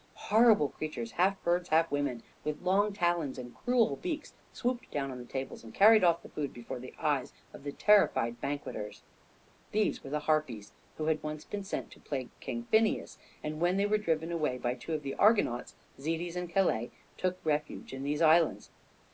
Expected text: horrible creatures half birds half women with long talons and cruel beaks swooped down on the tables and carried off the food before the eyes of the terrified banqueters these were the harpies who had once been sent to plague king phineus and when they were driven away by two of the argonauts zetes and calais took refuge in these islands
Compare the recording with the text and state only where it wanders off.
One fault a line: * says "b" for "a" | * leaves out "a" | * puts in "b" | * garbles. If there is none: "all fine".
all fine